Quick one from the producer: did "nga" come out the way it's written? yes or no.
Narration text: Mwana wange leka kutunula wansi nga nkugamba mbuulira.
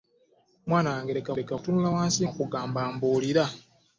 no